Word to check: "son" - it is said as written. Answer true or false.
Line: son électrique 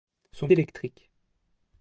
true